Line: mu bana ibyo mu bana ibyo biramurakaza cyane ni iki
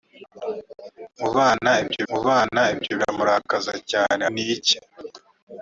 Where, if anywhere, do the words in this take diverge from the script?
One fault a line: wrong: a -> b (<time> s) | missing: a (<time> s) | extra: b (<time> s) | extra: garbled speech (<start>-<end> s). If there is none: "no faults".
no faults